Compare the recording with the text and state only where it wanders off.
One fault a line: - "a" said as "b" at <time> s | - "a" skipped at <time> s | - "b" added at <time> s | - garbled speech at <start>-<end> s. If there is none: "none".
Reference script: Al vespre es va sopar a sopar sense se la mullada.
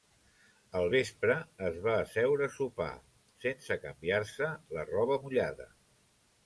- "sopar" said as "asseure" at 2.0 s
- "canviar" added at 3.9 s
- "roba" added at 4.9 s